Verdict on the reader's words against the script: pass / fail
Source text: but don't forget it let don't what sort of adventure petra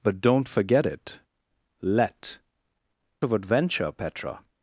fail